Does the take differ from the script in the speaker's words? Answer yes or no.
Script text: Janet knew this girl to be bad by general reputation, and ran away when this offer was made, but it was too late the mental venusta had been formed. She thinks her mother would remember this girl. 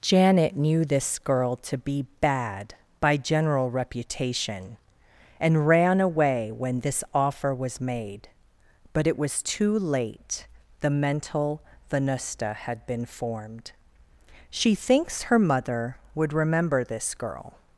no